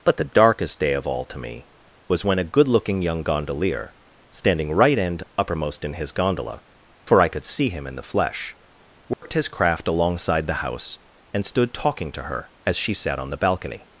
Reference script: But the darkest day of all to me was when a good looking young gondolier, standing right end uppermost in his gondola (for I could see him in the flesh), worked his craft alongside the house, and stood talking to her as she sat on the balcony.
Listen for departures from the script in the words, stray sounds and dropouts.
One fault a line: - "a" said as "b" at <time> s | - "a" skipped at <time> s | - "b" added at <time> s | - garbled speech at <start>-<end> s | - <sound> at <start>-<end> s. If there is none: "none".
- dropout at 9.1-9.2 s